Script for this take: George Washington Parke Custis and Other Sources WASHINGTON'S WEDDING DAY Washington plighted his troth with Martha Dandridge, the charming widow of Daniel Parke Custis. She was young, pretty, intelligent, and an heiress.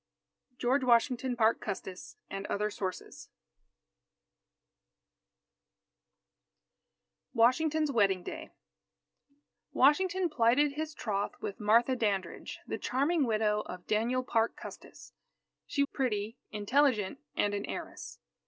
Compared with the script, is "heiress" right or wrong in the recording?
right